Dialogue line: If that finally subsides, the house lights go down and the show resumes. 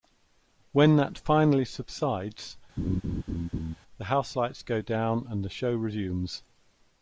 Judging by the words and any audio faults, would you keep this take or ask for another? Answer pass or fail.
fail